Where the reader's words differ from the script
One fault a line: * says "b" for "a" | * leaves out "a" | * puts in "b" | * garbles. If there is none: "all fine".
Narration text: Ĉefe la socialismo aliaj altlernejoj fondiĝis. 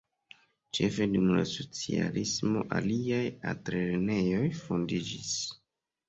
* puts in "dum"